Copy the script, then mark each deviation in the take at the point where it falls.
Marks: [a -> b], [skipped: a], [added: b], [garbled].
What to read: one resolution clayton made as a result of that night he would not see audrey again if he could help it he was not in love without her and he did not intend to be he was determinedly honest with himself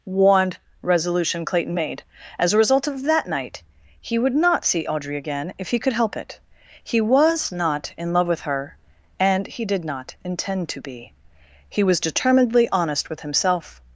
one resolution clayton made as a result of that night he would not see audrey again if he could help it he was not in love [without -> with] her and he did not intend to be he was determinedly honest with himself